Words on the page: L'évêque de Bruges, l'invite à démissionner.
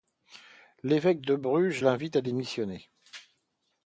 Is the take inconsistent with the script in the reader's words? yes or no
no